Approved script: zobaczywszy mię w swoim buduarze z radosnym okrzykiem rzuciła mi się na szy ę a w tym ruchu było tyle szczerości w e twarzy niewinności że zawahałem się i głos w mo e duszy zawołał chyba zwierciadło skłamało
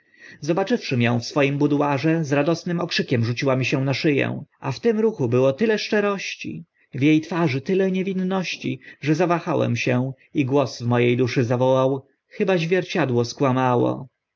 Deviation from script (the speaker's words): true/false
true